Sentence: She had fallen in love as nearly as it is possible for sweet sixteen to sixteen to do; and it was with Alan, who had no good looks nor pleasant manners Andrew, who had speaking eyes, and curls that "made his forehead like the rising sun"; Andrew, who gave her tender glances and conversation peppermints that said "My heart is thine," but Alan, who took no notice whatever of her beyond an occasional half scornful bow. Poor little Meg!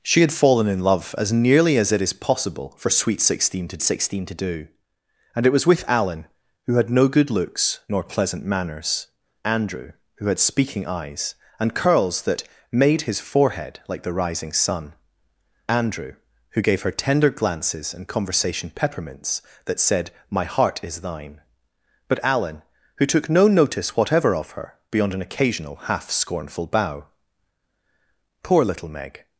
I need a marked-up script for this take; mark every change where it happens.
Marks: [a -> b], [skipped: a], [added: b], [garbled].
She had fallen in love as nearly as it is possible for sweet sixteen to sixteen to do; and it was with Alan, who had no good looks nor pleasant manners Andrew, who had speaking eyes, and curls that "made his forehead like the rising sun"; Andrew, who gave her tender glances and conversation peppermints that said "My heart is thine," but Alan, who took no notice whatever of her beyond an occasional half scornful bow. Poor little Meg!